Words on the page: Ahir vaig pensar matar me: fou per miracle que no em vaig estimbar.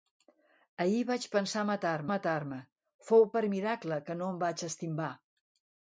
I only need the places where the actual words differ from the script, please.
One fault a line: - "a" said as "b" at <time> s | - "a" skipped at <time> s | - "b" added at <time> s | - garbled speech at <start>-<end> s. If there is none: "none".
- "matar" added at 2.1 s